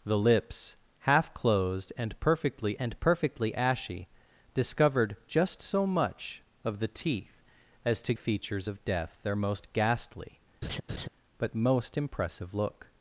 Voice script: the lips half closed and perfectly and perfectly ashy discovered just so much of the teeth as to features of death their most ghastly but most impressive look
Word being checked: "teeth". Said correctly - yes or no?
yes